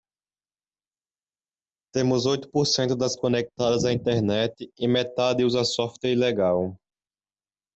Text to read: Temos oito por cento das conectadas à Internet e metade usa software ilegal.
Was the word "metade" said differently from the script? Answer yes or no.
no